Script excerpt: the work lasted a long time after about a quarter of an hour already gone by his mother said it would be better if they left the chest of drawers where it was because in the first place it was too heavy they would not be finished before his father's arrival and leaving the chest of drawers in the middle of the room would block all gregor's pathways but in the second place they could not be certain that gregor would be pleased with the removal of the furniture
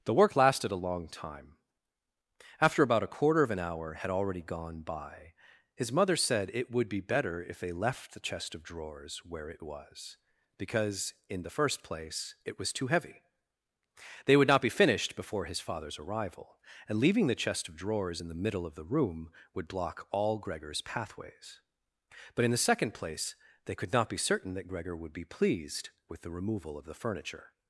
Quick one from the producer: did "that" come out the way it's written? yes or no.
yes